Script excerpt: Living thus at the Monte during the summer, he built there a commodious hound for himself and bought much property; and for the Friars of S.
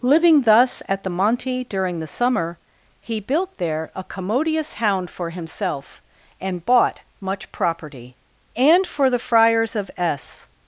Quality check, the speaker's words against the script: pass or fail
pass